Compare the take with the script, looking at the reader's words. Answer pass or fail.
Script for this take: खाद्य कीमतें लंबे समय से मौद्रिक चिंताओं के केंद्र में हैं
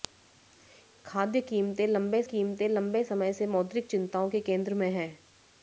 fail